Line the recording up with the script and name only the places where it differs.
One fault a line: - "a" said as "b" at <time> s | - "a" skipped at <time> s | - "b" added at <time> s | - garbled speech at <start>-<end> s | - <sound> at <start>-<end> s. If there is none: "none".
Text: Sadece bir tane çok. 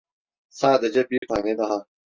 - dropout at 1.2-1.2 s
- "çok" said as "daha" at 1.6 s